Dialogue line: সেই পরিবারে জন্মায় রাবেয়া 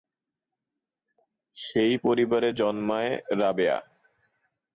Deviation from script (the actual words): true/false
false